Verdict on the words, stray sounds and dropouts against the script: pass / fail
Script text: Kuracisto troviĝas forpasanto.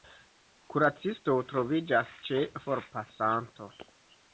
fail